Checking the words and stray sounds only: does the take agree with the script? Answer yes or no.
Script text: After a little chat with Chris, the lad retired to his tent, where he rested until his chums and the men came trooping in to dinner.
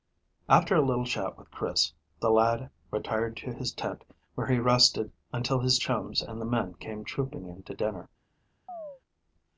no